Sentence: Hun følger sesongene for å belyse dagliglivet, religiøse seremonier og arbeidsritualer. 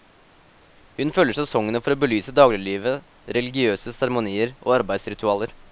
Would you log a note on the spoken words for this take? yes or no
no